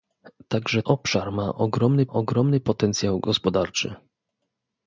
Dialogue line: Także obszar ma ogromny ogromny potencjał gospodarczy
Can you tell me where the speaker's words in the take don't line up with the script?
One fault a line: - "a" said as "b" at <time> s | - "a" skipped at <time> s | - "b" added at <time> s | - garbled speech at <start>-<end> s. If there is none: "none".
none